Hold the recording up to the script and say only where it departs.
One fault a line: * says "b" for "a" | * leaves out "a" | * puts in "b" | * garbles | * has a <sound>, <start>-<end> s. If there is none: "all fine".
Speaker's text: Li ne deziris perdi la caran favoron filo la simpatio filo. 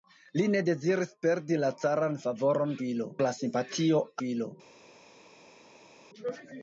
all fine